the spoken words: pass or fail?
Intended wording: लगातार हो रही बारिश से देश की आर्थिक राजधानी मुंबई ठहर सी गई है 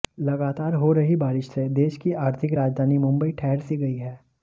pass